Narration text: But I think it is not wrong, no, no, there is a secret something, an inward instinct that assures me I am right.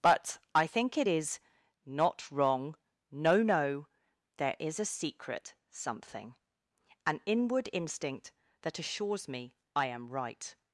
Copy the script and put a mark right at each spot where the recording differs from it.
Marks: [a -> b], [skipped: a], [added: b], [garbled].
But I think it is not wrong, no, no, there is a secret something, an inward instinct that assures me I am right.